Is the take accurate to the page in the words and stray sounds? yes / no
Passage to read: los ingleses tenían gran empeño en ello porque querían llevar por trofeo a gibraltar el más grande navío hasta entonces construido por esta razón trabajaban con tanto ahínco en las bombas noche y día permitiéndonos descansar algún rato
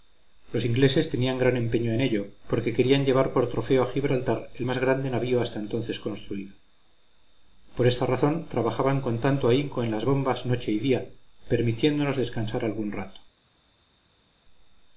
yes